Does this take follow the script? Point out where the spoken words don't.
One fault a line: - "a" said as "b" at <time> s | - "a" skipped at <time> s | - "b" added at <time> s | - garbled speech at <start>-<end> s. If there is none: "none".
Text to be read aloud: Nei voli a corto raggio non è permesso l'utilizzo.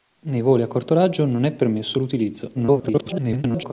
- garbled speech at 2.5-3.7 s